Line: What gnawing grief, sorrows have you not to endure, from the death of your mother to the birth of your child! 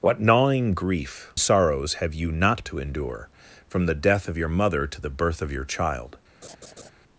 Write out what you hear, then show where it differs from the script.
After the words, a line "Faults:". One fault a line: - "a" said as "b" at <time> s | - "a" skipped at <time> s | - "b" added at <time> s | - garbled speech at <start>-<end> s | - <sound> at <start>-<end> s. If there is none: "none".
What gnawing grief, sorrows have you not to endure, from the death of your mother to the birth of your child!
Faults:
- laugh at 6.4-6.9 s